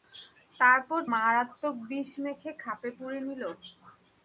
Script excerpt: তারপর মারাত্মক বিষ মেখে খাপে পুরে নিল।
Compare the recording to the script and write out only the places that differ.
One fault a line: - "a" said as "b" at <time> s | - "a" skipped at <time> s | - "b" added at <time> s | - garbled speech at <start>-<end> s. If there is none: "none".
none